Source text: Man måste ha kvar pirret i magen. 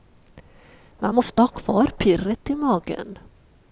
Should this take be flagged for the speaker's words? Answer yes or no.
no